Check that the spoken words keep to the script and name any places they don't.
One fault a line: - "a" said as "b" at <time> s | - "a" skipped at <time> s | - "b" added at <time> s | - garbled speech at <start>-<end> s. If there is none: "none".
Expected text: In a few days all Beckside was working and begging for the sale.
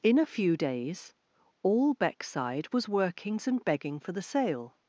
- "working" said as "workings" at 2.9 s